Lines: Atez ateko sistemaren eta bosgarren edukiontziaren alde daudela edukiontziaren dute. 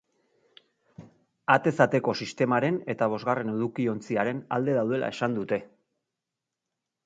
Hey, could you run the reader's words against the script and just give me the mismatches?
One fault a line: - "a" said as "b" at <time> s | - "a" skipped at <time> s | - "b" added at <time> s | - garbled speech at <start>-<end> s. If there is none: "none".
- "edukiontziaren" said as "esan" at 5.2 s